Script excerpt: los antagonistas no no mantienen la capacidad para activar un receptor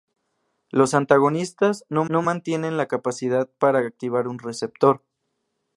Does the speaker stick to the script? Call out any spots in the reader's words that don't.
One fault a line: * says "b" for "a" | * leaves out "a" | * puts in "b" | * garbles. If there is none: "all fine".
all fine